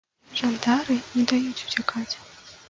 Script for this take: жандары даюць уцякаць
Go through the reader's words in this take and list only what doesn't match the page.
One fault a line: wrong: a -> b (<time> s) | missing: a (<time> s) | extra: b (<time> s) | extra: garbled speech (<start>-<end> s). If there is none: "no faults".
extra: не (1.2 s)